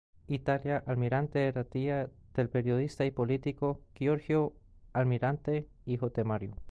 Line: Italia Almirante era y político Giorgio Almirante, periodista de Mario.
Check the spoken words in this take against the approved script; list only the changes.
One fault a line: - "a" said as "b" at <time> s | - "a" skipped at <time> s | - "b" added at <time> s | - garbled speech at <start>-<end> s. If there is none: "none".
- "tía del periodista" added at 1.6 s
- "periodista" said as "hijo" at 5.8 s